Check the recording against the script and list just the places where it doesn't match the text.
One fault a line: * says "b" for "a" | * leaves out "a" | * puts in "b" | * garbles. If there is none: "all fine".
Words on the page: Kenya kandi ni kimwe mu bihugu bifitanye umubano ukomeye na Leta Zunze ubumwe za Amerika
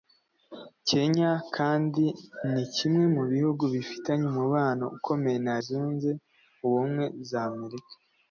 * leaves out "Leta"